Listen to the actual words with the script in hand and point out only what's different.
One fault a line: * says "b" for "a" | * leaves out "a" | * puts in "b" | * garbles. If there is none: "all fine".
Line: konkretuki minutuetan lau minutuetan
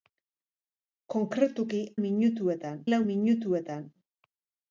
all fine